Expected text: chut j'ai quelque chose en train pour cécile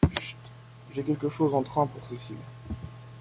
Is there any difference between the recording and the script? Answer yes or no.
no